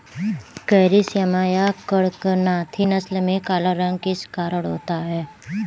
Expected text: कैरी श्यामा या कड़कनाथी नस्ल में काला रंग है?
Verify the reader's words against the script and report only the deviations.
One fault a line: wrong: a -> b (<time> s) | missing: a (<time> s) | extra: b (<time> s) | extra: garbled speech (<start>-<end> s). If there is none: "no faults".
extra: किस कारण होता (4.0 s)